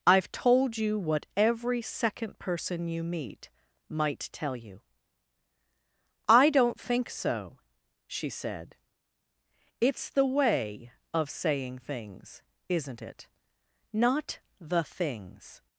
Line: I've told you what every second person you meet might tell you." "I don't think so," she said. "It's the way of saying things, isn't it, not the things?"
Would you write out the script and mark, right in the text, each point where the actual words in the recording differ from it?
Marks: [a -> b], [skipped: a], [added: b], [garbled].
I've told you what every second person you meet might tell you." "I don't think so," she said. "It's the way of saying things, isn't it, not the things?"